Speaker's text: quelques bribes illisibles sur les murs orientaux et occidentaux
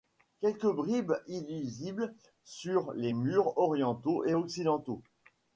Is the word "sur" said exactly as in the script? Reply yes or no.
yes